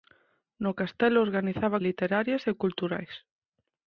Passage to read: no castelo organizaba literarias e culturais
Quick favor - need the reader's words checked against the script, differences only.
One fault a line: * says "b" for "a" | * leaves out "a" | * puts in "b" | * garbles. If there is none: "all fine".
all fine